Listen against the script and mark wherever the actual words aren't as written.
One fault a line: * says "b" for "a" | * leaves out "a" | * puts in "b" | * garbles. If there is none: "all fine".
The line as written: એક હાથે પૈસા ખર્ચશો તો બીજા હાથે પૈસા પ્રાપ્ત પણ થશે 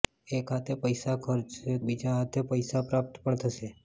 * leaves out "તો"